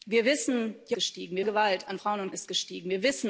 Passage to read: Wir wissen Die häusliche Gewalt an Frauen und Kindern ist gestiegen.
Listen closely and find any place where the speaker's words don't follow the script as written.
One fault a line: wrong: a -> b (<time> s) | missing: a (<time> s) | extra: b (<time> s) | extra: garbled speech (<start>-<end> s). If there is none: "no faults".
wrong: häusliche -> gestiegen (0.9 s)
missing: Kindern (2.3 s)